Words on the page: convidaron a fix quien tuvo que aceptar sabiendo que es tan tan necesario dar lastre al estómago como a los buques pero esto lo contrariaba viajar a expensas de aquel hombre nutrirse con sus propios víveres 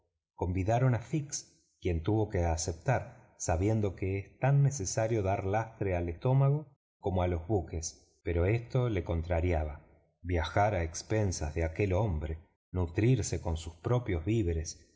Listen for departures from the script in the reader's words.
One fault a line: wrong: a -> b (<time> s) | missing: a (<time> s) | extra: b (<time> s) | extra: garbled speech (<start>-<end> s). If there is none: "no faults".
missing: tan (4.6 s)